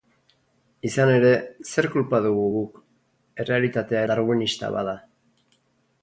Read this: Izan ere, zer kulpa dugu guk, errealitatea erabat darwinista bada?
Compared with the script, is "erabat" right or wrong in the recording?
wrong